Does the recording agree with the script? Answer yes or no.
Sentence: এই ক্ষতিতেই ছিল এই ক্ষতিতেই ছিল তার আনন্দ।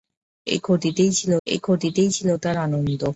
yes